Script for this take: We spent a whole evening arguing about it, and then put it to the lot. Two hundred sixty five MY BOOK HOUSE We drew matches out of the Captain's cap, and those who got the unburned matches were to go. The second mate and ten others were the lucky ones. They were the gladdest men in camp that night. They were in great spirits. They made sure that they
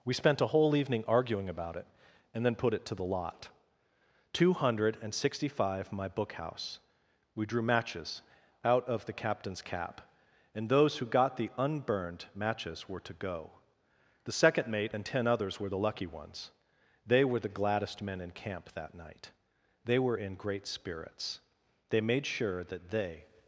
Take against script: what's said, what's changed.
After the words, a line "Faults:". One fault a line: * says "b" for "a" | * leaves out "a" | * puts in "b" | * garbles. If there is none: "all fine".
We spent a whole evening arguing about it, and then put it to the lot. Two hundred sixty five MY BOOK HOUSE We drew matches out of the Captain's cap, and those who got the unburned matches were to go. The second mate and ten others were the lucky ones. They were the gladdest men in camp that night. They were in great spirits. They made sure that they
Faults:
all fine